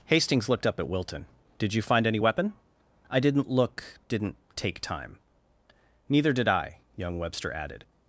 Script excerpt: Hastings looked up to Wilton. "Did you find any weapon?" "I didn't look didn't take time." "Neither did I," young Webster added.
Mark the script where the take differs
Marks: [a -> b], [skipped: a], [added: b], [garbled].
Hastings looked up [to -> at] Wilton. "Did you find any weapon?" "I didn't look didn't take time." "Neither did I," young Webster added.